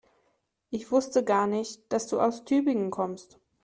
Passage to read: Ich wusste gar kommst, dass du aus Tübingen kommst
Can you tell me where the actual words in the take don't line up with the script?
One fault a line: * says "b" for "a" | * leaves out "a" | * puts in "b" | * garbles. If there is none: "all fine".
* says "nicht" for "kommst"